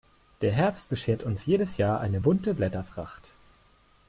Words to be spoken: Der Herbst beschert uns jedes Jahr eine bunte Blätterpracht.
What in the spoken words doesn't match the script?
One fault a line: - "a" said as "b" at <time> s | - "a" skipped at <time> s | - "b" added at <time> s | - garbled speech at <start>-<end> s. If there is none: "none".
none